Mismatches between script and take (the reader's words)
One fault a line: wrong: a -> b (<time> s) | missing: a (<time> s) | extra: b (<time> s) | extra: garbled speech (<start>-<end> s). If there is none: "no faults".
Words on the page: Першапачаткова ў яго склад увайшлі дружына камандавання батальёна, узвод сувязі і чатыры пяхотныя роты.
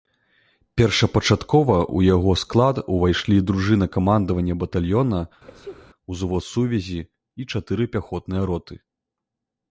no faults